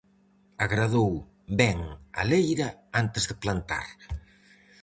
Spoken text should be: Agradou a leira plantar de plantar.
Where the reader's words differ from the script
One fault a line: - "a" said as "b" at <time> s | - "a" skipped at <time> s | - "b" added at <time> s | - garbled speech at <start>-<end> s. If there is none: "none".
- "ben" added at 1.6 s
- "plantar" said as "antes" at 3.0 s